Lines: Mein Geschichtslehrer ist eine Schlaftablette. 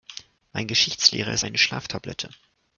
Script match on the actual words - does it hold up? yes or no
yes